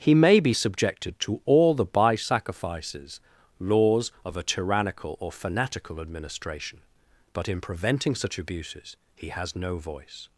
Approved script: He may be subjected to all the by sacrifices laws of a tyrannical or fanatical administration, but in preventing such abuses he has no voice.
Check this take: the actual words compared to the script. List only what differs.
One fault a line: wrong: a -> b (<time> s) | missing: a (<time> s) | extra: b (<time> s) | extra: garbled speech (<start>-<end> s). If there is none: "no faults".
no faults